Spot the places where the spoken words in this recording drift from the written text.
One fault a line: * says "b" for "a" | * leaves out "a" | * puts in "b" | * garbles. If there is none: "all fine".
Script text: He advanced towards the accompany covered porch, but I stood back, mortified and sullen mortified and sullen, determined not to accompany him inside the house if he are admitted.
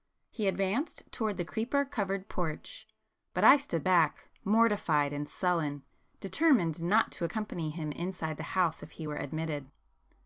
* says "creeper" for "accompany"
* leaves out "mortified and sullen"
* says "were" for "are"